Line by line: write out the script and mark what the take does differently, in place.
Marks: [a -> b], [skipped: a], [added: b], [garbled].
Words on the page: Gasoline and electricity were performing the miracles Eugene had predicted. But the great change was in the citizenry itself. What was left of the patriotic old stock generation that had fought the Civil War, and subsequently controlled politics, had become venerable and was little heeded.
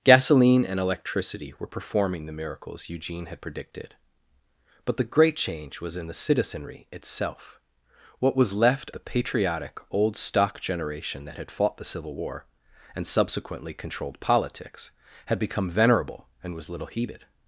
Gasoline and electricity were performing the miracles Eugene had predicted. But the great change was in the citizenry itself. What was left [skipped: of] the patriotic old stock generation that had fought the Civil War, and subsequently controlled politics, had become venerable and was little heeded.